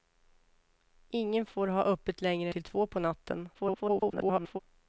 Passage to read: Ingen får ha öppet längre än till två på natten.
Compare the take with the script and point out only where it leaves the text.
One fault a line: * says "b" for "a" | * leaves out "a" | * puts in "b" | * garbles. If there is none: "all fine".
* leaves out "än"
* garbles